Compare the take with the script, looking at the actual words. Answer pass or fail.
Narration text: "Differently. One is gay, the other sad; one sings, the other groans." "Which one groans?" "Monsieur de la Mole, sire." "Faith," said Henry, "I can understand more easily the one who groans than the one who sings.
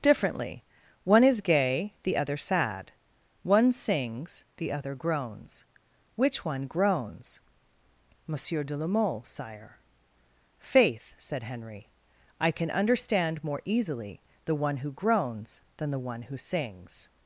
pass